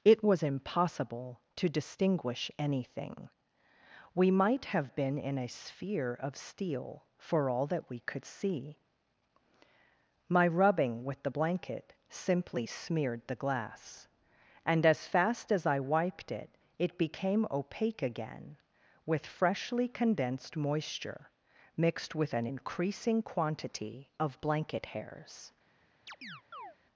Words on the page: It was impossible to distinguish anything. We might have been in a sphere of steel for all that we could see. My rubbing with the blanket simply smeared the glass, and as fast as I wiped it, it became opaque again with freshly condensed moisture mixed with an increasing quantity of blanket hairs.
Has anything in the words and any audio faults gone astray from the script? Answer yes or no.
yes